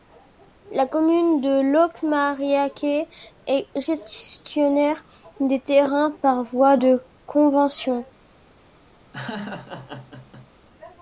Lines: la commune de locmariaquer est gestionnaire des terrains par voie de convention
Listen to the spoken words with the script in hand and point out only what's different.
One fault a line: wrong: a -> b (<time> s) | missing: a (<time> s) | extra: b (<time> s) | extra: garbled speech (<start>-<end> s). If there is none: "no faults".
no faults